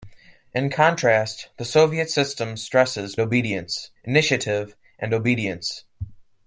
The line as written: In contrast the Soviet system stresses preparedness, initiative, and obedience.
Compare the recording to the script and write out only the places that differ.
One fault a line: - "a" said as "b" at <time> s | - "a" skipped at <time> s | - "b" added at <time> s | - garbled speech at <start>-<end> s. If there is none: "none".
- "preparedness" said as "obedience" at 3.2 s